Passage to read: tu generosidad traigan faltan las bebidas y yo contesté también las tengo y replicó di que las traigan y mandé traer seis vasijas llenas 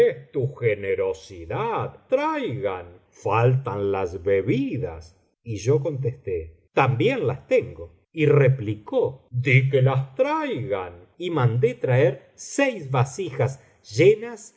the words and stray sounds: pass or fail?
pass